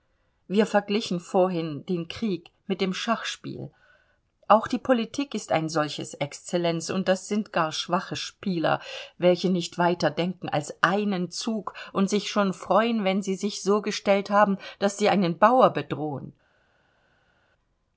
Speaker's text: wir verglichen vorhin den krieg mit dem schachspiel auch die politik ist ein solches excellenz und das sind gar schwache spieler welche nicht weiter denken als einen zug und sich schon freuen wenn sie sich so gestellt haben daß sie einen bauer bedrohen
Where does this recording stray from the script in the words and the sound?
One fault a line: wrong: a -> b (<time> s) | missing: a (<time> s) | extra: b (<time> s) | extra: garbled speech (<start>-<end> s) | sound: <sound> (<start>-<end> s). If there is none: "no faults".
no faults